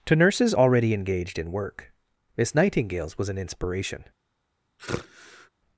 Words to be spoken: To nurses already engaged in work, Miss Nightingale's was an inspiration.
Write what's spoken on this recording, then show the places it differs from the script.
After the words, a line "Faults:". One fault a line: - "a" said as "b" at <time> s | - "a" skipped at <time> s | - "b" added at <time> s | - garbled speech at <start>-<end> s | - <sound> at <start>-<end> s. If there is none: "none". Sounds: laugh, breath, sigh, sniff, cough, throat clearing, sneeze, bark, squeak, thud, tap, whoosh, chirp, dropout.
To nurses already engaged in work, Miss Nightingale's was an inspiration.
Faults:
- sigh at 4.8-5.5 s